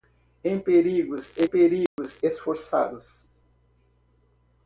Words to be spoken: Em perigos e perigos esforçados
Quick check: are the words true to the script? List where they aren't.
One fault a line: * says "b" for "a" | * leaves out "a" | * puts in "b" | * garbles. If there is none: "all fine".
all fine